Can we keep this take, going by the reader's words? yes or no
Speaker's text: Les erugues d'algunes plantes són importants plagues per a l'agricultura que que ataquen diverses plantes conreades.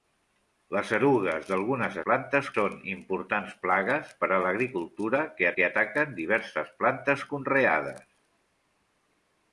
yes